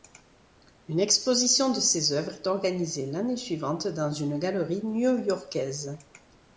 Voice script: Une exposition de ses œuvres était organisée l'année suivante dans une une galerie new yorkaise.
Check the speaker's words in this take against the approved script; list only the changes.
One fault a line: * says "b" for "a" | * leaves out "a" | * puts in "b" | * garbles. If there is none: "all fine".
* says "est" for "était"
* leaves out "une"